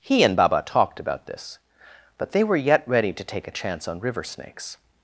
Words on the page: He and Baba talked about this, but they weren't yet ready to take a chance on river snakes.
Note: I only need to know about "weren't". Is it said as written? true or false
false